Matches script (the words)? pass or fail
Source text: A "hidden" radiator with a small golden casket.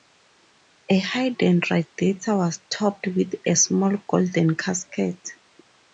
fail